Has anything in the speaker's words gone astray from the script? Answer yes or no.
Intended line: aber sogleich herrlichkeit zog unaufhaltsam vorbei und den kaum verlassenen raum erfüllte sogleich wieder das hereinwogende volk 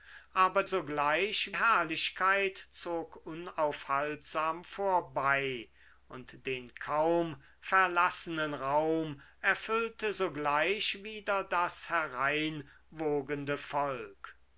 no